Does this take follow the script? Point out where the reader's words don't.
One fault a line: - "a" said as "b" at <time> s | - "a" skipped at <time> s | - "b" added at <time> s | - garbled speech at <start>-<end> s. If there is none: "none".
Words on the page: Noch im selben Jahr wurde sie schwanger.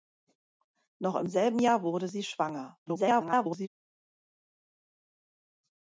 - garbled speech at 2.9-3.7 s